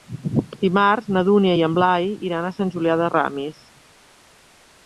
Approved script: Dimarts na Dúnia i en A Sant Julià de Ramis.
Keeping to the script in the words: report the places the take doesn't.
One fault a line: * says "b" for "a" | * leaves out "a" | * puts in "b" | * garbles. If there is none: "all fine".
* puts in "Blai iran"